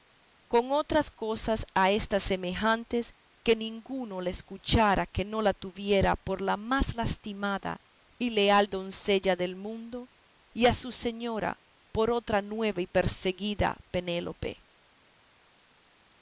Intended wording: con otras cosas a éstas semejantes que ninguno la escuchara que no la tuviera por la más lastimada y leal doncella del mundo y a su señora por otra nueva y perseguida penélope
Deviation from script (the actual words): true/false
false